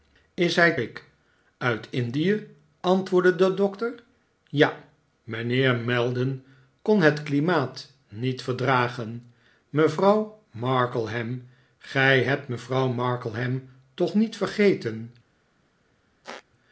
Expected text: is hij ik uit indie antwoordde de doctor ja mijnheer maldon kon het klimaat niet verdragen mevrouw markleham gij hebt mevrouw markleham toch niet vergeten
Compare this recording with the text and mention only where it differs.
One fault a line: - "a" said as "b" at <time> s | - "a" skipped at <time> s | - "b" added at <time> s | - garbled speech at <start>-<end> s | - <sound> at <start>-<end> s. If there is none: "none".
- squeak at 16.2-16.4 s